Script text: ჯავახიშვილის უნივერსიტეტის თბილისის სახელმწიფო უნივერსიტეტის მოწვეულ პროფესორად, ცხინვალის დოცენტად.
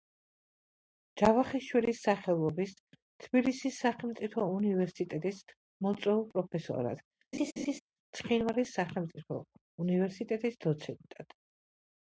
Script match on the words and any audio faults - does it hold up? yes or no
no